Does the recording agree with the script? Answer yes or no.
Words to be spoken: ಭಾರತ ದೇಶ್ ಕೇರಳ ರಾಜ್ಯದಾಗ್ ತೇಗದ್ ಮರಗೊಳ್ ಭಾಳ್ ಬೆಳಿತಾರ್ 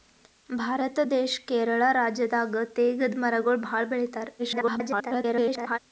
no